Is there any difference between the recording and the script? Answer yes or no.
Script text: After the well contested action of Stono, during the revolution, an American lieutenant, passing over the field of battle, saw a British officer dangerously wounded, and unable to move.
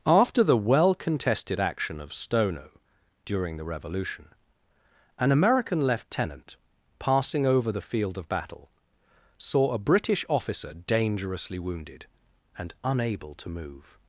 no